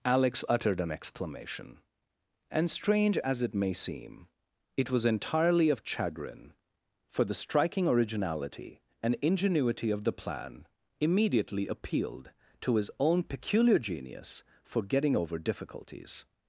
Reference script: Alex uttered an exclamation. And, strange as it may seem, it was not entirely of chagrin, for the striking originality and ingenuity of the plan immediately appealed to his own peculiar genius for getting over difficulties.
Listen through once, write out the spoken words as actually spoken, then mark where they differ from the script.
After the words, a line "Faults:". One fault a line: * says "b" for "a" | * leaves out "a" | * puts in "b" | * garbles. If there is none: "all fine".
Alex uttered an exclamation. And, strange as it may seem, it was entirely of chagrin, for the striking originality and ingenuity of the plan immediately appealed to his own peculiar genius for getting over difficulties.
Faults:
* leaves out "not"